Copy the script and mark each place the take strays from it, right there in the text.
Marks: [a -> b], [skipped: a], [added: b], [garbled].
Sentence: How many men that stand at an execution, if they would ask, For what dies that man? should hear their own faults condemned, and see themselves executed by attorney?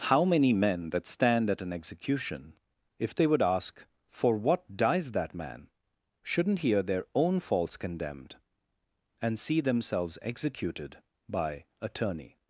How many men that stand at an execution, if they would ask, For what dies that man? [should -> shouldn't] hear their own faults condemned, and see themselves executed by attorney?